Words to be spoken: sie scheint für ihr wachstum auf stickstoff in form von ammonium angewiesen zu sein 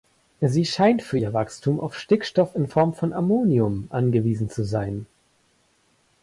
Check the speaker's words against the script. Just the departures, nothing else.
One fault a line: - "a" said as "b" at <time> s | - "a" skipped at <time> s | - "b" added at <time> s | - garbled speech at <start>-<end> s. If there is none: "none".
none